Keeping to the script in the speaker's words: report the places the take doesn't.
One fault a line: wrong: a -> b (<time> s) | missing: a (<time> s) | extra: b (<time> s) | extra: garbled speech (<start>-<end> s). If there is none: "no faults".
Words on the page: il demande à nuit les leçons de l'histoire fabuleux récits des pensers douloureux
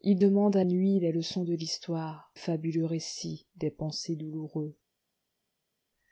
no faults